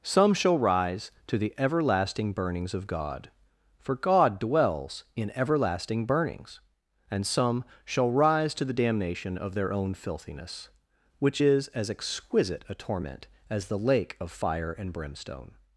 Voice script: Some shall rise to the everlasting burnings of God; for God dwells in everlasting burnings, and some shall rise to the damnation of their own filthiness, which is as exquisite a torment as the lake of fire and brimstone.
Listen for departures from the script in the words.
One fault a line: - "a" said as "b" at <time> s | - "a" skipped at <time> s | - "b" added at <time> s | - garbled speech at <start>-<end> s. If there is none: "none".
none